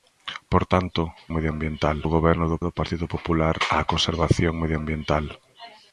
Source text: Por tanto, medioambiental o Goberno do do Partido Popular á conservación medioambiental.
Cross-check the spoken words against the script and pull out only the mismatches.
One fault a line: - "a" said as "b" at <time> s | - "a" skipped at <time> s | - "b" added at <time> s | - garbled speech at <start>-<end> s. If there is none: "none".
none